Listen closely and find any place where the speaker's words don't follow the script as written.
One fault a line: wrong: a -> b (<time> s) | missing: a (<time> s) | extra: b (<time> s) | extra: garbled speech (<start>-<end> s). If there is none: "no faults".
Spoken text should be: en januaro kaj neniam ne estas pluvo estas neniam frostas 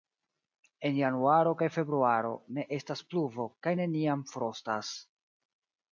wrong: neniam -> februaro (1.8 s)
wrong: estas -> kaj (3.7 s)